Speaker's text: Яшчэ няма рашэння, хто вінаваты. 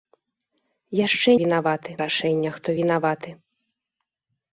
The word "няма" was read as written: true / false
false